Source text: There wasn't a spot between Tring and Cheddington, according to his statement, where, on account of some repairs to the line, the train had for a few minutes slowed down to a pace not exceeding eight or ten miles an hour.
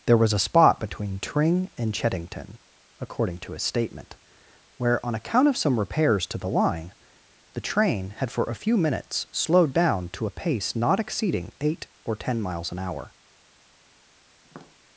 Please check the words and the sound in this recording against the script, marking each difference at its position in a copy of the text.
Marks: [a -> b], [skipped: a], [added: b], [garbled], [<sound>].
There [wasn't -> was] a spot between Tring and Cheddington, according to his statement, where, on account of some repairs to the line, the train had for a few minutes slowed down to a pace not exceeding eight or ten miles an hour. [tap]